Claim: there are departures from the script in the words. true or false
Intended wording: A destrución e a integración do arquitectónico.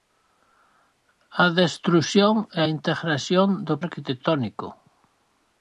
false